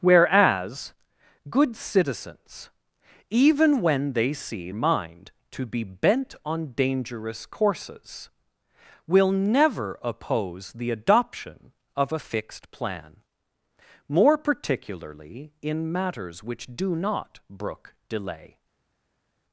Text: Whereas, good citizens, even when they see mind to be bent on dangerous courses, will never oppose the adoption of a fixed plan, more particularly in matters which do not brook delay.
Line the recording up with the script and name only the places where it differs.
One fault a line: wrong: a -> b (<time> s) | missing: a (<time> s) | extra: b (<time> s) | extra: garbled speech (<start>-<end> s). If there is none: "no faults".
no faults